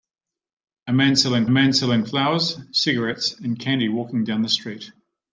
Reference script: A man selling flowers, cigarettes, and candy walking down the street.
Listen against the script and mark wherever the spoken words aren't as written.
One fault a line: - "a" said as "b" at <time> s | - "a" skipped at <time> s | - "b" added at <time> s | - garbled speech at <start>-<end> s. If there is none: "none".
- "man selling" added at 1.5 s